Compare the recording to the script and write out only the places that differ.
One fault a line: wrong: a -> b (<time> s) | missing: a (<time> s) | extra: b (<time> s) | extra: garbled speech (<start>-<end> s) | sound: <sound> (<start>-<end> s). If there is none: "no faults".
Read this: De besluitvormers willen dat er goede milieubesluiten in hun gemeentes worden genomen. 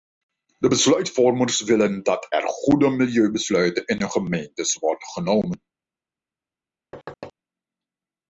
sound: thud (6.9-7.3 s)